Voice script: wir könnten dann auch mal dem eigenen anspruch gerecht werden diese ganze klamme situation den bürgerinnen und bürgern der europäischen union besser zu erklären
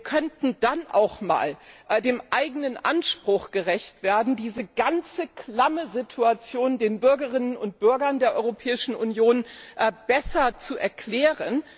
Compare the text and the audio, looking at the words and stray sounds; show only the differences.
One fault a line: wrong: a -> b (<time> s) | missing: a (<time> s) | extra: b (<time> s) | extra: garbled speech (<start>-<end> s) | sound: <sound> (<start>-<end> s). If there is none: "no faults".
no faults